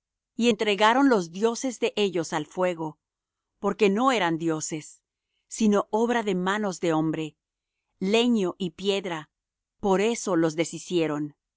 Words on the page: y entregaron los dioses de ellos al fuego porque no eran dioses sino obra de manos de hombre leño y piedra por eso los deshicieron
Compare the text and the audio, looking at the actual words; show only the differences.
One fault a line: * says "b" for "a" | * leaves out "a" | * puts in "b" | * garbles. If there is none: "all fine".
all fine